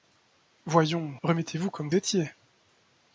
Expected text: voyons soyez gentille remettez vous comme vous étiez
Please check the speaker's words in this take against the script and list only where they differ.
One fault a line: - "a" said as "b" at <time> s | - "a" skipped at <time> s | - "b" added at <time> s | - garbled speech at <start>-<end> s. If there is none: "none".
- "soyez gentille" skipped at 1.1 s
- "vous" skipped at 1.9 s